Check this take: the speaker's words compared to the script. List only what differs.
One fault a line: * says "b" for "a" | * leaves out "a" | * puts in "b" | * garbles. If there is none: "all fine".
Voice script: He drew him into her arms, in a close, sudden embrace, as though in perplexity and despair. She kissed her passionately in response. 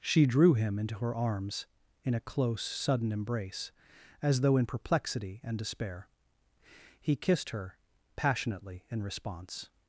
* says "She" for "He"
* says "He" for "She"